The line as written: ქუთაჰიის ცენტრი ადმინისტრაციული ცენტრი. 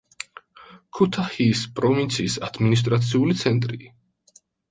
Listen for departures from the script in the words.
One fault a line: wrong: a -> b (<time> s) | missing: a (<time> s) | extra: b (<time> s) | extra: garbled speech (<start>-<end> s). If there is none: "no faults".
wrong: ცენტრი -> პროვინციის (1.8 s)